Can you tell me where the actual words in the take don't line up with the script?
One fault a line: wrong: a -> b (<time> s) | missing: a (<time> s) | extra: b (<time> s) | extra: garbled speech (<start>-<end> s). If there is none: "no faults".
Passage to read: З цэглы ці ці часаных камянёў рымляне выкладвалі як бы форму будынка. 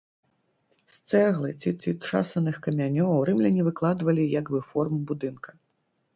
no faults